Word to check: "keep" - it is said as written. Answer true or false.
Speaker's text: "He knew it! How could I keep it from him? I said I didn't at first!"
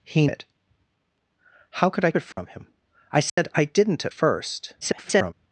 false